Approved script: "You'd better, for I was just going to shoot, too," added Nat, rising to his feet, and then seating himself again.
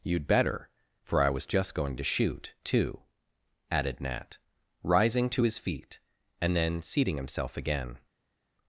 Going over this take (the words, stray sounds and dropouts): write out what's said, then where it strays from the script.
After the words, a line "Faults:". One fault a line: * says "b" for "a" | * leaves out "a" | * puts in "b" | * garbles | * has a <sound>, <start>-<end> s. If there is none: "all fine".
"You'd better, for I was just going to shoot, too," added Nat, rising to his feet, and then seating himself again.
Faults:
all fine